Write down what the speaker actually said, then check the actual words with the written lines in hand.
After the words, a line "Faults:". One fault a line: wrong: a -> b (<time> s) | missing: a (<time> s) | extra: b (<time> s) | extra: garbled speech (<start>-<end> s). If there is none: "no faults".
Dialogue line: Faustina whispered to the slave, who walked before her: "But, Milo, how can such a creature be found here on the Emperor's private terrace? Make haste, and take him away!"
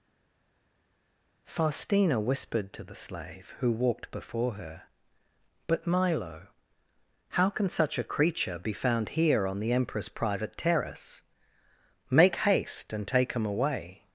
Faustina whispered to the slave, who walked before her: "But, Milo, how can such a creature be found here on the Emperor's private terrace? Make haste, and take him away!"
Faults:
no faults